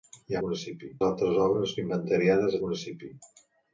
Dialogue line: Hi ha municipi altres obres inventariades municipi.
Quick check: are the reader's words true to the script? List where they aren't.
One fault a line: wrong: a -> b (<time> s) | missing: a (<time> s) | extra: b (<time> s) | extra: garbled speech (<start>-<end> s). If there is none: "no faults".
no faults